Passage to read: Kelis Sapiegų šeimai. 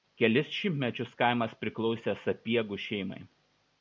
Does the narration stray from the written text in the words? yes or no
yes